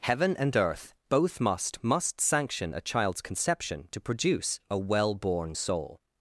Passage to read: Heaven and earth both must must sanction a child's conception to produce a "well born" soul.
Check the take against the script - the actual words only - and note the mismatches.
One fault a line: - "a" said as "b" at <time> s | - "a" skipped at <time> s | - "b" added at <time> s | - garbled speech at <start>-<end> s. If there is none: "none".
none